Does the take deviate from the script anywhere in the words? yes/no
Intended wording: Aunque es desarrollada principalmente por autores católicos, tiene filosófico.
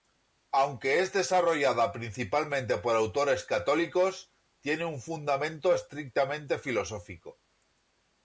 yes